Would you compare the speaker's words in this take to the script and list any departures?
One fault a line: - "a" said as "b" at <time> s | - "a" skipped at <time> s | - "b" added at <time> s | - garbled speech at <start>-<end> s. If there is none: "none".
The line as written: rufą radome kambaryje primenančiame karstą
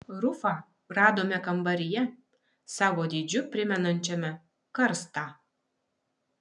- "savo dydžiu" added at 2.8 s